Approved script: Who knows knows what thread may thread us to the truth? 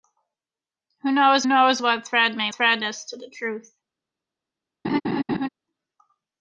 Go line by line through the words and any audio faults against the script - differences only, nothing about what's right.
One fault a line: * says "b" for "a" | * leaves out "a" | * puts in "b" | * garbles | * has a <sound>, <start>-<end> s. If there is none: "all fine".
* has a laugh, 4.8-5.5 s